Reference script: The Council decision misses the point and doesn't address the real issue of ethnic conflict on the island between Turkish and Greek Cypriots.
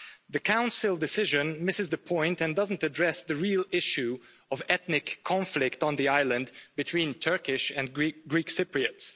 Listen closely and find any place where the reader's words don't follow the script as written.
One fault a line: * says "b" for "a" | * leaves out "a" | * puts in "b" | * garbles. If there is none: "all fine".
all fine